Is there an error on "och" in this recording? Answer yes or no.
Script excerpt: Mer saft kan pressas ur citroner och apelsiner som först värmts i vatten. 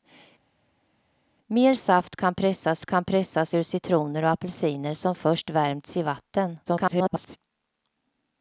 no